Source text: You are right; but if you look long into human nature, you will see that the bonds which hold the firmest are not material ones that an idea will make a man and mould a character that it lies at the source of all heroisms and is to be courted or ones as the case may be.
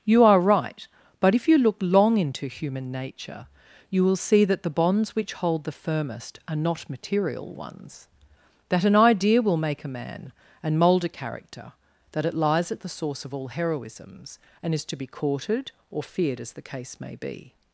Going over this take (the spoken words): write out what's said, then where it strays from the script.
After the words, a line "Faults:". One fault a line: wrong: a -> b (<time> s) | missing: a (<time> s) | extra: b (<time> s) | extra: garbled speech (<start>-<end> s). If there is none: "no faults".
You are right; but if you look long into human nature, you will see that the bonds which hold the firmest are not material ones that an idea will make a man and mould a character that it lies at the source of all heroisms and is to be courted or feared as the case may be.
Faults:
wrong: ones -> feared (16.0 s)